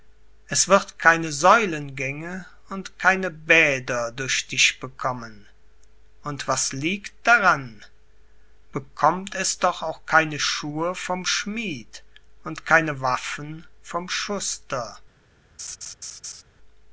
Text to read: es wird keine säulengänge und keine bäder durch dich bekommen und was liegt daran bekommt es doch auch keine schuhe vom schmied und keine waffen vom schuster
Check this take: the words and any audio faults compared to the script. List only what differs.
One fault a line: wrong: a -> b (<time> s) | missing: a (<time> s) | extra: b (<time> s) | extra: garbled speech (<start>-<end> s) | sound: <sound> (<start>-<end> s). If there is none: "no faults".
sound: laugh (15.6-16.4 s)